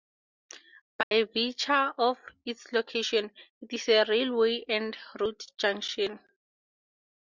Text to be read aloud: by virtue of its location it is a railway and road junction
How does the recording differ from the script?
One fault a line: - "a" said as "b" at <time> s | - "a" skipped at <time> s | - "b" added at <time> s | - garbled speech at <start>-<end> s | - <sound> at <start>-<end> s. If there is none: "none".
- dropout at 1.0-1.1 s